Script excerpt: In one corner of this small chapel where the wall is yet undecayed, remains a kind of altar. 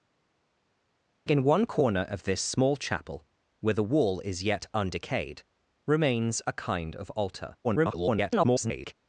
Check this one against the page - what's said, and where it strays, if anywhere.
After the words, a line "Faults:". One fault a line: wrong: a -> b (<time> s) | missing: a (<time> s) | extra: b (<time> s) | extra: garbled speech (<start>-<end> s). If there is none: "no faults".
In one corner of this small chapel where the wall is yet undecayed, remains a kind of altar. [garbled]
Faults:
extra: garbled speech (7.6-8.9 s)